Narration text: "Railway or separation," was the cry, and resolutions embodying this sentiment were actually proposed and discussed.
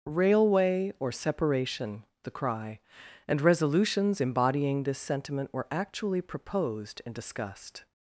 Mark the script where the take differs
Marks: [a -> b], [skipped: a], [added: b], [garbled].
"Railway or separation," [skipped: was] the cry, and resolutions embodying this sentiment were actually proposed and discussed.